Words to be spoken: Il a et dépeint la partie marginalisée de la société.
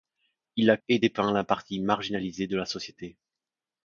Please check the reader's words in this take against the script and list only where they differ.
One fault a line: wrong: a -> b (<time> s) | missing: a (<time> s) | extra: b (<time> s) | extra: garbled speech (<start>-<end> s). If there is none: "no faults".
no faults